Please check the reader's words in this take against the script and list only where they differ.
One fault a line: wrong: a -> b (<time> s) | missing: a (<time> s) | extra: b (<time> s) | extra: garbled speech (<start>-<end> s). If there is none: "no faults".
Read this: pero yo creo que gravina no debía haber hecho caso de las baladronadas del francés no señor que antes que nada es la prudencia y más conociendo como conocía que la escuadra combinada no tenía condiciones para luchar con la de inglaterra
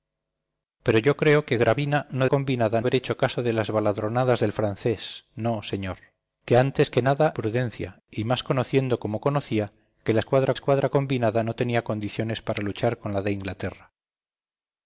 wrong: debía -> combinada (2.3 s)
missing: es la (7.4 s)
extra: escuadra (10.5 s)